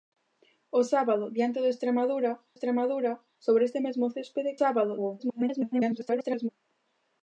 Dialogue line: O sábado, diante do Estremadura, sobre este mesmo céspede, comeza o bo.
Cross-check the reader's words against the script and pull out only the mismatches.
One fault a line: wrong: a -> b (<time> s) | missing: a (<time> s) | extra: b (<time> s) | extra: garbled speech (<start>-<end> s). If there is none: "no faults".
extra: Estremadura (2.5 s)
wrong: comeza -> sábado (4.6 s)
extra: garbled speech (5.2-6.5 s)